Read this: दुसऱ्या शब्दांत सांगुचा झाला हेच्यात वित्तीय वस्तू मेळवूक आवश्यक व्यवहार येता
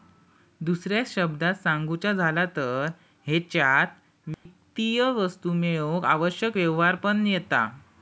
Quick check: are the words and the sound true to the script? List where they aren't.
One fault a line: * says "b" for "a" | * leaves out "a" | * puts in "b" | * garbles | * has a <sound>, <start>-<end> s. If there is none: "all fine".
* puts in "तर"
* has a dropout, 4.3-4.5 s
* puts in "पण"